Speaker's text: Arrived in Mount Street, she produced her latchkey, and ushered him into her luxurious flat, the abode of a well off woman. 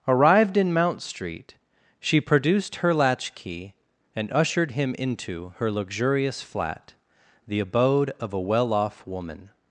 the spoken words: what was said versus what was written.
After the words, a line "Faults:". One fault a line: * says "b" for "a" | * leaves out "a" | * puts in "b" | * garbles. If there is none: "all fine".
Arrived in Mount Street, she produced her latchkey, and ushered him into her luxurious flat, the abode of a well off woman.
Faults:
all fine